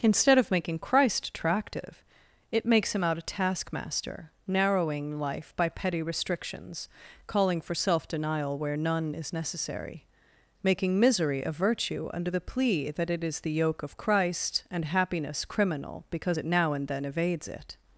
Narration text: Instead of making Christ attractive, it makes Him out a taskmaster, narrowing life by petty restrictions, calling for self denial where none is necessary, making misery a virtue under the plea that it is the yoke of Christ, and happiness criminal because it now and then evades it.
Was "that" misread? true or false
false